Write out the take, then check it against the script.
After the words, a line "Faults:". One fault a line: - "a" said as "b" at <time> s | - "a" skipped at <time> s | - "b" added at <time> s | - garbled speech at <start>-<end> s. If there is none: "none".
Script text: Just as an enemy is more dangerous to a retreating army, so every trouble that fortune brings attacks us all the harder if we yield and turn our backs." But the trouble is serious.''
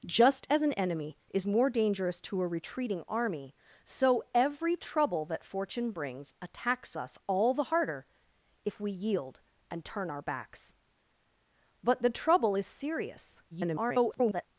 Just as an enemy is more dangerous to a retreating army, so every trouble that fortune brings attacks us all the harder if we yield and turn our backs." But the trouble is serious.'' [garbled]
Faults:
- garbled speech at 13.5-14.5 s